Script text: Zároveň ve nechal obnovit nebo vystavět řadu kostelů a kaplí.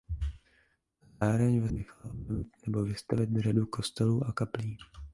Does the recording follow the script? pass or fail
pass